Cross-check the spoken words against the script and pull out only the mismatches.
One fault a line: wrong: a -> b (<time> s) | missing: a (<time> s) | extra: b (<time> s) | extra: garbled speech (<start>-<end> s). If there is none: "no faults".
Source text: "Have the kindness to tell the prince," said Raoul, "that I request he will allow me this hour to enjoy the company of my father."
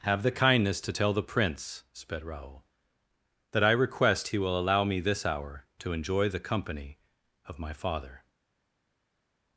wrong: said -> sped (1.9 s)